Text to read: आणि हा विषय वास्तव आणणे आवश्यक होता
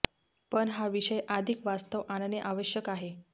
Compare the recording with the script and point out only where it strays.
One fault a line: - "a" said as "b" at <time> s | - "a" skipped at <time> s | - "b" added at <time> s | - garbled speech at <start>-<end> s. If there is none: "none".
- "आणि" said as "पण" at 0.5 s
- "अधिक" added at 1.3 s
- "होता" said as "आहे" at 2.9 s